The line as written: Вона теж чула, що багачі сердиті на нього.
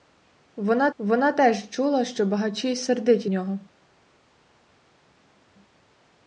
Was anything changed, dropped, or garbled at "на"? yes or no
yes